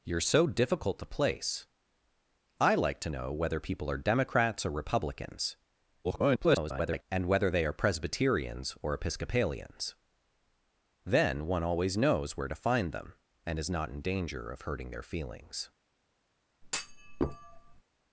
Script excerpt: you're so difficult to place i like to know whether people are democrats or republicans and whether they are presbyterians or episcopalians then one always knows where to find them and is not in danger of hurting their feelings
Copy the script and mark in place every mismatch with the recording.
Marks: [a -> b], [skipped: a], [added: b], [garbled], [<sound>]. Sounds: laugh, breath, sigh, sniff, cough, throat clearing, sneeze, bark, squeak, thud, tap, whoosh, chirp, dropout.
you're so difficult to place i like to know whether people are democrats or republicans [garbled] and whether they are presbyterians or episcopalians then one always knows where to find them and is not in danger of hurting their feelings [thud]